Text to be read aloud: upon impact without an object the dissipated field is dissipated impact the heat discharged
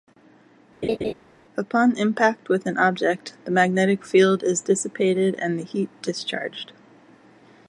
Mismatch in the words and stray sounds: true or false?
true